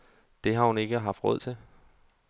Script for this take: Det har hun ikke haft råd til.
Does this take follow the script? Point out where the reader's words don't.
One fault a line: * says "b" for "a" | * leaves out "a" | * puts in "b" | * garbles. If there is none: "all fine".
all fine